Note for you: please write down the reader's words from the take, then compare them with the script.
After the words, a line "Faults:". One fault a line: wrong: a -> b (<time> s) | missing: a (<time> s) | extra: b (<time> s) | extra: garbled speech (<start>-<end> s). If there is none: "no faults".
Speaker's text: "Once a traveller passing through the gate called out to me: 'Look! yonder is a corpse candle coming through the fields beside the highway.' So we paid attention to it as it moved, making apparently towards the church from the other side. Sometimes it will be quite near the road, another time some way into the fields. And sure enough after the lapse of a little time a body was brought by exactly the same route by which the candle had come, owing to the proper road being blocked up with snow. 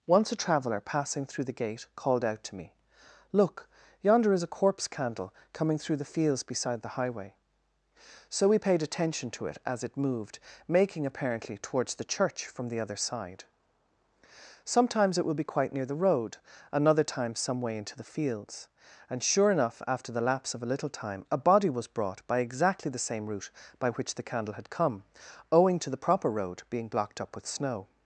"Once a traveller passing through the gate called out to me: 'Look! yonder is a corpse candle coming through the fields beside the highway.' So we paid attention to it as it moved, making apparently towards the church from the other side. Sometimes it will be quite near the road, another time some way into the fields. And sure enough after the lapse of a little time a body was brought by exactly the same route by which the candle had come, owing to the proper road being blocked up with snow.
Faults:
no faults